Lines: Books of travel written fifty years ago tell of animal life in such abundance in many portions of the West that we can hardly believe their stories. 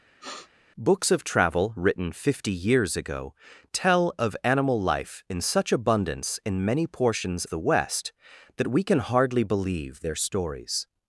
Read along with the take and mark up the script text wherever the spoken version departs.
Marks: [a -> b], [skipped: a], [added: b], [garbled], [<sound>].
[sniff] Books of travel written fifty years ago tell of animal life in such abundance in many portions [skipped: of] the West that we can hardly believe their stories.